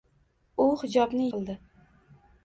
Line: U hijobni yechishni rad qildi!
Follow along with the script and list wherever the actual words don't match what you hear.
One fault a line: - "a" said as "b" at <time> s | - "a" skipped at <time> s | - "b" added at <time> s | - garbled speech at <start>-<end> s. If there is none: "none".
- "yechishni rad" skipped at 1.3 s